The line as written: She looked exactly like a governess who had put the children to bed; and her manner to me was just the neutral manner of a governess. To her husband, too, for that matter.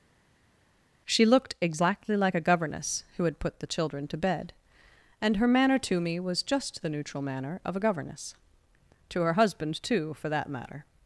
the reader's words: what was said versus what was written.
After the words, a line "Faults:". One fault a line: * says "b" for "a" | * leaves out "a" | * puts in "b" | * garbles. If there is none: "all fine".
She looked exactly like a governess who had put the children to bed; and her manner to me was just the neutral manner of a governess. To her husband, too, for that matter.
Faults:
all fine